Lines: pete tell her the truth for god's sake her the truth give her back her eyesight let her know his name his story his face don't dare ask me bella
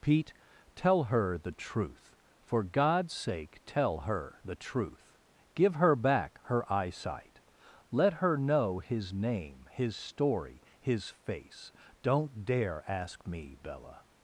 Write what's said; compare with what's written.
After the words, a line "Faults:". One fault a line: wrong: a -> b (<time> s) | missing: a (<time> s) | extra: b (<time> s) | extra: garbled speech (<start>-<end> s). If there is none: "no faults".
pete tell her the truth for god's sake tell her the truth give her back her eyesight let her know his name his story his face don't dare ask me bella
Faults:
extra: tell (3.6 s)